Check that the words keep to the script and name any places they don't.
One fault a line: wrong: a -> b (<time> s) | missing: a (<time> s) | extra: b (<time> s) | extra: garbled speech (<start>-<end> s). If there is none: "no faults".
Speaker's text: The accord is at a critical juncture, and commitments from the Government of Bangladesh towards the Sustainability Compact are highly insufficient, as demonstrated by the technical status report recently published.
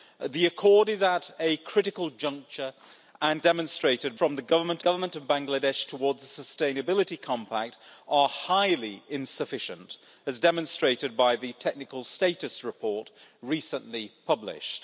wrong: commitments -> demonstrated (3.4 s)
extra: Government (4.8 s)